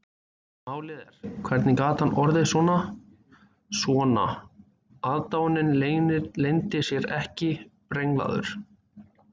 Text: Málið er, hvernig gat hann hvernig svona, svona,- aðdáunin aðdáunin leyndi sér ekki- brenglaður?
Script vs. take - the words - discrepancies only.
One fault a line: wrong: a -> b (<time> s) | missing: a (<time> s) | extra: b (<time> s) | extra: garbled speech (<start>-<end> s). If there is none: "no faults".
wrong: hvernig -> orðið (2.2 s)
missing: aðdáunin (5.7 s)